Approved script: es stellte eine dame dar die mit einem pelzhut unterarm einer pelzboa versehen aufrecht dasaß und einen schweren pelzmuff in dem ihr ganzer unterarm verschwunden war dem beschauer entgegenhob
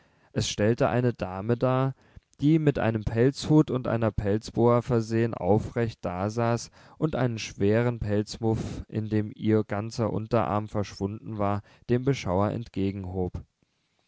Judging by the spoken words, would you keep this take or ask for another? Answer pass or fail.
fail